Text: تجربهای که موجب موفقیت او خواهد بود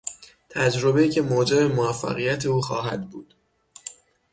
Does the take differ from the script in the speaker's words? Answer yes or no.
no